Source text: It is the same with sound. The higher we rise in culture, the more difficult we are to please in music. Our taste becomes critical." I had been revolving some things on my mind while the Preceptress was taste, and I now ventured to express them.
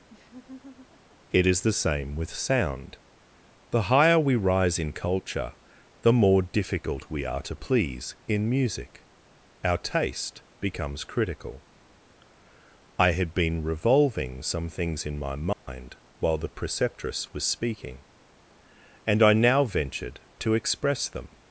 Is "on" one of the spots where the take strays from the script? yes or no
yes